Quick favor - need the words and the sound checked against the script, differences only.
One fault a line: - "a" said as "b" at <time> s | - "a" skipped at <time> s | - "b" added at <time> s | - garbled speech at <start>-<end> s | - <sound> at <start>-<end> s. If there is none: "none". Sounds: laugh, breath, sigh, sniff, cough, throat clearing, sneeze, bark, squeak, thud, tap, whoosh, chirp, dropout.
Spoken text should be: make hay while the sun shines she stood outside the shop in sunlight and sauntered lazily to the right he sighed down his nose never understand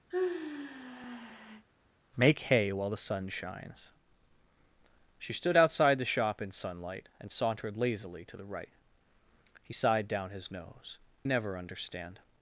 - sigh at 0.1-1.7 s